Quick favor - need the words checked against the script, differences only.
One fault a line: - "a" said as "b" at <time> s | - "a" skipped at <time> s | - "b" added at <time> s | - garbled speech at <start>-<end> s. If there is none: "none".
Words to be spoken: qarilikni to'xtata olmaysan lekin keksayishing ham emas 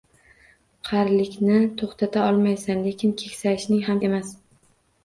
none